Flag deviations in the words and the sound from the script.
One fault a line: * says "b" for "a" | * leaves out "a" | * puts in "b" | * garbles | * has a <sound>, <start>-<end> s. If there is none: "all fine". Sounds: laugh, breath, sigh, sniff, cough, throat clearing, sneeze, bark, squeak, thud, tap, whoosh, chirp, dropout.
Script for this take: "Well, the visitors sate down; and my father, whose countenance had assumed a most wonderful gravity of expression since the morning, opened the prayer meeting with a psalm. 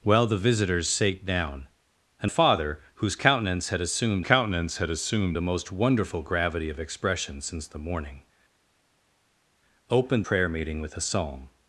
* leaves out "my"
* puts in "countenance had assumed"
* leaves out "the"